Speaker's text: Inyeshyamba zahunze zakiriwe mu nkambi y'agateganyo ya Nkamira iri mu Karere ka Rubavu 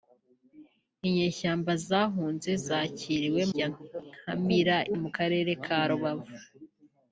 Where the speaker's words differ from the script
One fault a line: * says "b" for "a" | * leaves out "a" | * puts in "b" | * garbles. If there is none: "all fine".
* leaves out "mu nkambi y'agateganyo"
* leaves out "iri"